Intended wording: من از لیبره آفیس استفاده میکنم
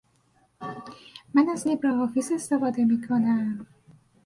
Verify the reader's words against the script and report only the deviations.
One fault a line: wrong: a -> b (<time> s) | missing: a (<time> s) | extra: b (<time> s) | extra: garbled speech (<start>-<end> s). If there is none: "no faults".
no faults